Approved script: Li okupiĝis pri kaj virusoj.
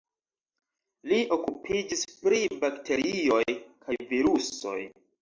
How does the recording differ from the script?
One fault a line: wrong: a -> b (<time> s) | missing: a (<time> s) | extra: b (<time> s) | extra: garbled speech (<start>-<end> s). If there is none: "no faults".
extra: bakterioj (2.6 s)